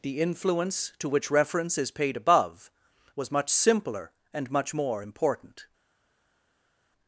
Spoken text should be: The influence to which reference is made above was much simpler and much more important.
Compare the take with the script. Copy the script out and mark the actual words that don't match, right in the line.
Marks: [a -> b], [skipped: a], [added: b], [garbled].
The influence to which reference is [made -> paid] above was much simpler and much more important.